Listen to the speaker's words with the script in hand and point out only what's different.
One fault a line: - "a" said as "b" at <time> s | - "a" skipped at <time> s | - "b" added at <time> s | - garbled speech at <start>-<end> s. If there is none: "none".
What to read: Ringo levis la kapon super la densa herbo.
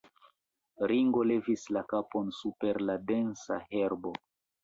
none